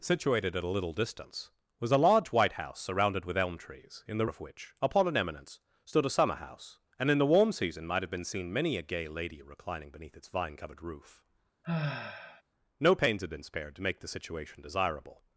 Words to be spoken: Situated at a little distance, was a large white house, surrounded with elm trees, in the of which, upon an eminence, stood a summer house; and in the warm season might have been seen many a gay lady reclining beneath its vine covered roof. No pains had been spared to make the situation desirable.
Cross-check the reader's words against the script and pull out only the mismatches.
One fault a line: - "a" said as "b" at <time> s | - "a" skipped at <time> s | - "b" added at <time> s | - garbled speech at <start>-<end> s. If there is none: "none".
none